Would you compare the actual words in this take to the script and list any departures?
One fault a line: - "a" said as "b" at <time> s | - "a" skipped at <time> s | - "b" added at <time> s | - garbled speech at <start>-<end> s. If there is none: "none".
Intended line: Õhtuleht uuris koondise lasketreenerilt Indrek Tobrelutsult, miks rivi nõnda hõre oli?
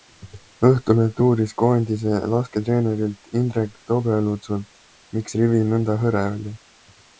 none